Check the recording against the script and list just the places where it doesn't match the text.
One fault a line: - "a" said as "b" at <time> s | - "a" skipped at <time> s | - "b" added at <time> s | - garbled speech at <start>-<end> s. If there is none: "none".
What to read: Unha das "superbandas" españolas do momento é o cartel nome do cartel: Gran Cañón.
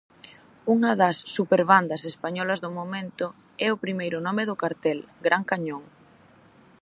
- "cartel" said as "primeiro" at 3.8 s